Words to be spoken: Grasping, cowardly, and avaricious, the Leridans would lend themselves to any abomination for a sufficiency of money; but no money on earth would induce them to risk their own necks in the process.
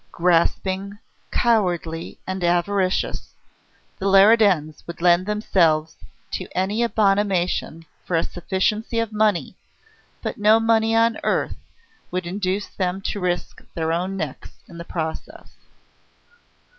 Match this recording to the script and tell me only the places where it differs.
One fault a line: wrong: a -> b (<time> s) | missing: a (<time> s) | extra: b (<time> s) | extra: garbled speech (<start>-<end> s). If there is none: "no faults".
no faults